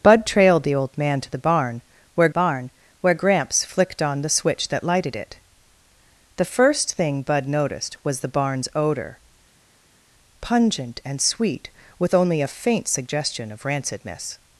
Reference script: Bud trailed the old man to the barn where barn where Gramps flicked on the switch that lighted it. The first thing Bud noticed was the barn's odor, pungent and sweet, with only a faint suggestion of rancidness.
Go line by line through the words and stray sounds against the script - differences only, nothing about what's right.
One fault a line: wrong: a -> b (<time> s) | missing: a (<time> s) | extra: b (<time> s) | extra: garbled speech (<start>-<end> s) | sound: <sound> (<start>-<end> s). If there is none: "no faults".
no faults